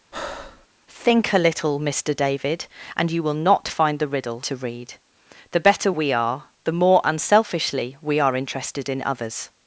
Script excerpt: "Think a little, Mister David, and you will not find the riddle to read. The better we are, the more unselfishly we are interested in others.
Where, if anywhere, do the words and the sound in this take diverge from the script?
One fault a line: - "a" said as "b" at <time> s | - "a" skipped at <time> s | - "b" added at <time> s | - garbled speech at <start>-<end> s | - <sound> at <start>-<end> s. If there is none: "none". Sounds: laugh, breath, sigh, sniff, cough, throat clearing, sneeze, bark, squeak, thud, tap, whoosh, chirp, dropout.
- breath at 0.1-0.7 s